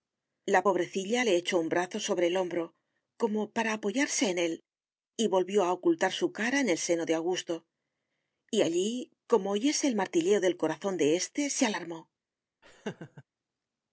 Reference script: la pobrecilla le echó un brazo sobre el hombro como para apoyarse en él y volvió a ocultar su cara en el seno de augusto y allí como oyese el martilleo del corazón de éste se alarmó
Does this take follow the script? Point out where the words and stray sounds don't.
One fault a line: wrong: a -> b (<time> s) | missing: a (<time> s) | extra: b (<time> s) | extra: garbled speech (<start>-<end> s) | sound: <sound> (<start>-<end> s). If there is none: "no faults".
sound: laugh (12.6-13.2 s)